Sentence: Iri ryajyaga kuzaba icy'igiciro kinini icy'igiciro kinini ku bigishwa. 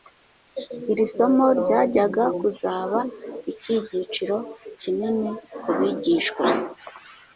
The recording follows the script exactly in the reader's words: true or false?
false